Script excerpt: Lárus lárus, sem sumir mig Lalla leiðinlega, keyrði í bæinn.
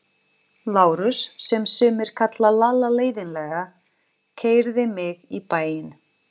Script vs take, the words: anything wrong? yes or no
yes